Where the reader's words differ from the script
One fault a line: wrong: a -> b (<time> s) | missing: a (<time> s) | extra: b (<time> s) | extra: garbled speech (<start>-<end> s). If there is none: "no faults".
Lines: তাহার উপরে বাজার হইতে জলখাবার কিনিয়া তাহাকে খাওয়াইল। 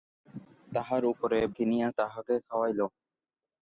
missing: বাজার হইতে জলখাবার (1.4 s)